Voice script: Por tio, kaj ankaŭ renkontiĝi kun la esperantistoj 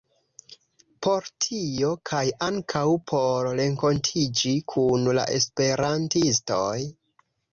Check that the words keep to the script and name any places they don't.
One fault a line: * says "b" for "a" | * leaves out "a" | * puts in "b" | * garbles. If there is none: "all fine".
* puts in "por"